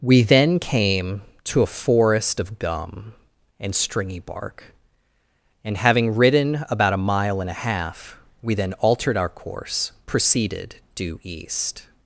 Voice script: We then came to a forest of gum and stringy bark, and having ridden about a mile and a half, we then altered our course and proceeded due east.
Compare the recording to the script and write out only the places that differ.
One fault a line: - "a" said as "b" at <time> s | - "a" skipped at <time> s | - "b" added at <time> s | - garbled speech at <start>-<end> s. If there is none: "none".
- "and" skipped at 9.9 s